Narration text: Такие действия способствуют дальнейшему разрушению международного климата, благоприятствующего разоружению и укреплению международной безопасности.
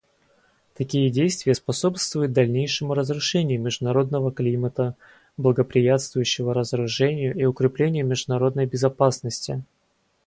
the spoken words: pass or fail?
pass